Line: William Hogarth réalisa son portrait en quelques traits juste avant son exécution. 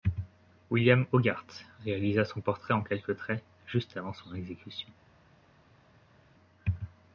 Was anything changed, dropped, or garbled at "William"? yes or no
no